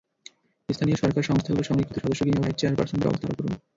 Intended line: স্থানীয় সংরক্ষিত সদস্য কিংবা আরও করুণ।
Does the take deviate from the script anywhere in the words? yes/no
yes